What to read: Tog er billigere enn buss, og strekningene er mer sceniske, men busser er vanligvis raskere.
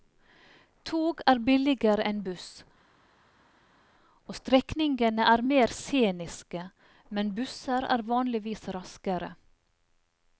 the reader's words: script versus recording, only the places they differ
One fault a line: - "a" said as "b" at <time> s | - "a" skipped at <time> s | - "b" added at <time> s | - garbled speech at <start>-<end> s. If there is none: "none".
none